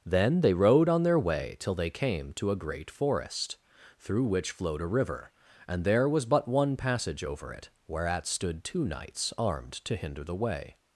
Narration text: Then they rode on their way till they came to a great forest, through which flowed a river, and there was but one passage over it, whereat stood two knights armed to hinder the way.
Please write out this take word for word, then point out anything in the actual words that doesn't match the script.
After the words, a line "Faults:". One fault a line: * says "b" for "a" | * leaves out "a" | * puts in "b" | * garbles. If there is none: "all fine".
Then they rode on their way till they came to a great forest, through which flowed a river, and there was but one passage over it, whereat stood two knights armed to hinder the way.
Faults:
all fine